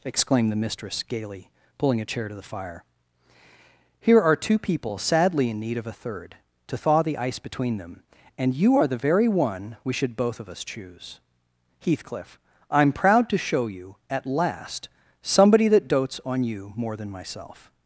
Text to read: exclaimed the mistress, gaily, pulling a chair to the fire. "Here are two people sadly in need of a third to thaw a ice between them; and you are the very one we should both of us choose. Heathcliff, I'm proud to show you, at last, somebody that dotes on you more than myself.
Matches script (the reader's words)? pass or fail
fail